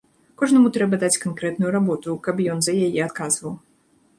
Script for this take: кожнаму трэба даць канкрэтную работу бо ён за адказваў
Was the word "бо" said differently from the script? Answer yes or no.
yes